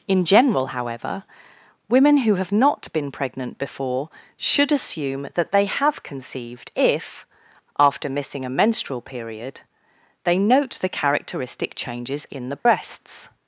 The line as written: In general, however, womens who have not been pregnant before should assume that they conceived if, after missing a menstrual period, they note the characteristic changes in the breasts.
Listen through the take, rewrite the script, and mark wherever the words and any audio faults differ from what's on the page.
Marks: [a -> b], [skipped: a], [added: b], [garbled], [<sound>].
In general, however, [womens -> women] who have not been pregnant before should assume that they [added: have] conceived if, after missing a menstrual period, they note the characteristic changes in the breasts. [dropout]